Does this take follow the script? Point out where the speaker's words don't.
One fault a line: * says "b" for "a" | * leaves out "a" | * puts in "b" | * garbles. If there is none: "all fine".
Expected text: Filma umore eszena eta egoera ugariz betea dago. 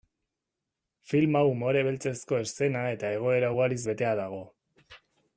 * puts in "beltzezko"